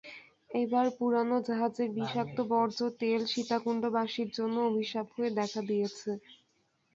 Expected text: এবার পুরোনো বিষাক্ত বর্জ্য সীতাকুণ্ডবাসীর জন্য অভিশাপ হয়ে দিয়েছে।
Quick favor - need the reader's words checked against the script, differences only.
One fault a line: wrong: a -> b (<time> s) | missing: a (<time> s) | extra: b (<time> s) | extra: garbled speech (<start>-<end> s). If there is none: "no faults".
extra: জাহাজের (1.5 s)
extra: তেল (3.0 s)
extra: দেখা (5.4 s)